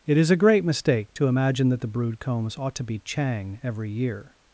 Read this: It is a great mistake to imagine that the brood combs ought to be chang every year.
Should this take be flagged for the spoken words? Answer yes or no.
no